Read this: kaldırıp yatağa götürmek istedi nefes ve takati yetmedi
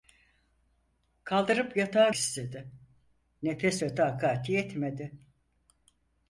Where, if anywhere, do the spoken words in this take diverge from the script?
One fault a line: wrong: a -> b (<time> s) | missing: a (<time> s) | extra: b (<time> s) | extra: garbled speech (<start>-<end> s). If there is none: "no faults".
missing: götürmek (2.1 s)